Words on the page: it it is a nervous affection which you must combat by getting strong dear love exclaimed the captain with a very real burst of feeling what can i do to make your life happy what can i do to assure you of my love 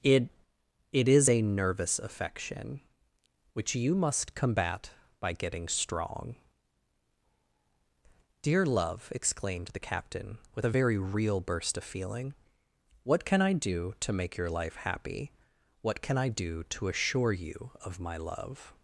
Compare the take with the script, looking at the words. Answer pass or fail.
pass